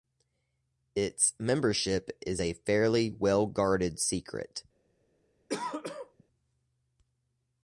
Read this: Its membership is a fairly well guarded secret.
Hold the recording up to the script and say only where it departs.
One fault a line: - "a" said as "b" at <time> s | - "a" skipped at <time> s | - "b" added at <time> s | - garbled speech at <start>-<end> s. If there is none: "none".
none